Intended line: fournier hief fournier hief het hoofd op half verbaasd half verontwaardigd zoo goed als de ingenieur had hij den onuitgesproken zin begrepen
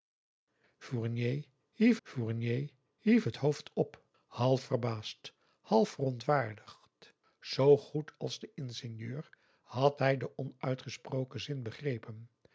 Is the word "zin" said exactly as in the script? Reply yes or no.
yes